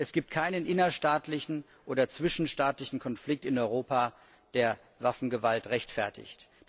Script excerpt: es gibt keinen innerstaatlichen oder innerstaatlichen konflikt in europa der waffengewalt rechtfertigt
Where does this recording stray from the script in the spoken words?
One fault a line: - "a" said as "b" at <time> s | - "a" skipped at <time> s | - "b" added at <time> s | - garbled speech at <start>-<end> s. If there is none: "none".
- "innerstaatlichen" said as "zwischenstaatlichen" at 2.1 s